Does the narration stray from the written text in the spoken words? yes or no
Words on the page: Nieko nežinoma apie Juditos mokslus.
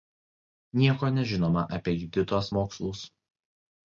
no